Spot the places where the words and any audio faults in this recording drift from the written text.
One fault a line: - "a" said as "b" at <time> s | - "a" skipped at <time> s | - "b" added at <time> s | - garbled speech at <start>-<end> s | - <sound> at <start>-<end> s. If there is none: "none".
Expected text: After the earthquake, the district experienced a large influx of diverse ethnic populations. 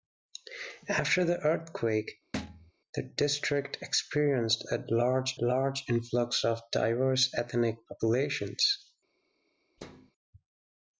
- thud at 2.3-2.7 s
- "large" added at 5.4 s
- thud at 9.8-10.1 s